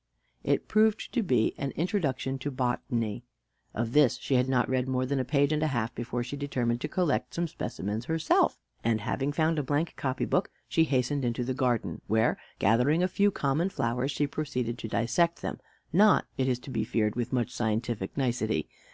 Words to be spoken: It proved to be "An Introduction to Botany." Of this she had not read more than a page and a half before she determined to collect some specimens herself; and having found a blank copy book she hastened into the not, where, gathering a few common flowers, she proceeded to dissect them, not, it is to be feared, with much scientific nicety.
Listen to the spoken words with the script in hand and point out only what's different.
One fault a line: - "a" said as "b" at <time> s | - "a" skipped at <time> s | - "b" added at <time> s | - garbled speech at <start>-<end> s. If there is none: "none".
- "not" said as "garden" at 11.5 s